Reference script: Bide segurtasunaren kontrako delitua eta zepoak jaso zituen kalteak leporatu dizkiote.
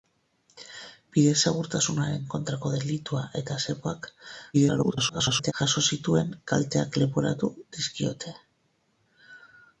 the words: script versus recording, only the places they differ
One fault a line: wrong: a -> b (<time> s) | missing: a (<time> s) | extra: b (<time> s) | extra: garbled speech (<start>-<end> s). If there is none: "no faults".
extra: garbled speech (4.5-5.5 s)